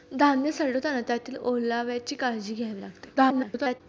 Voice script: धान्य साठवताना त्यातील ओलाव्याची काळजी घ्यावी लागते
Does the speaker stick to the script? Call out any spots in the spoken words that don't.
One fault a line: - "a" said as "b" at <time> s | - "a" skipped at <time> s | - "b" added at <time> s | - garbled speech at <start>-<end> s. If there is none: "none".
- garbled speech at 3.2-3.8 s